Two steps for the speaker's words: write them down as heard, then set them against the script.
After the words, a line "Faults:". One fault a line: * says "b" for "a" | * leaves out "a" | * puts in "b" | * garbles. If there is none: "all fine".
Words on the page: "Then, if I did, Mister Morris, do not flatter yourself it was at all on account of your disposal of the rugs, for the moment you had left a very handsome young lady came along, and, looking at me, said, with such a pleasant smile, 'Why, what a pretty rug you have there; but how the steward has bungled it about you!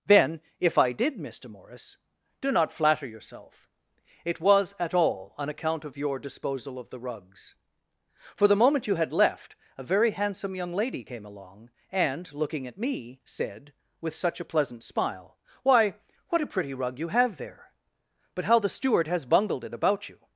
"Then, if I did, Mister Morris, do not flatter yourself it was at all on account of your disposal of the rugs, for the moment you had left a very handsome young lady came along, and, looking at me, said, with such a pleasant smile, 'Why, what a pretty rug you have there; but how the steward has bungled it about you!
Faults:
all fine